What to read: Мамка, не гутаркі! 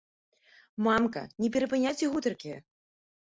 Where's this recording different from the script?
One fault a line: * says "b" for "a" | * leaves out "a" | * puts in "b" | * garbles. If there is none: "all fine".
* puts in "перапыняйце"